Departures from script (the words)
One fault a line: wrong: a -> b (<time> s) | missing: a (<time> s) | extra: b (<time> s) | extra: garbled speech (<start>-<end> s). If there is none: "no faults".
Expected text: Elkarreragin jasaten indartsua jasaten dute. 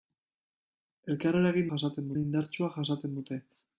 no faults